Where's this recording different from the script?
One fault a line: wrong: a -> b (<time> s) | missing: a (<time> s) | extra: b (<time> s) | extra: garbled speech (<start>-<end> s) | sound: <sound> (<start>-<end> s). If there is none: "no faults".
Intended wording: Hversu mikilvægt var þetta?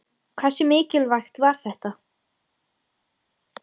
no faults